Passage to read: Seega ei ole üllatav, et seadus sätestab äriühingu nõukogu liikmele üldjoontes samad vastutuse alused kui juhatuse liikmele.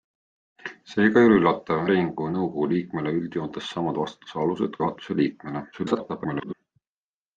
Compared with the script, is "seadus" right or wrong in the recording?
wrong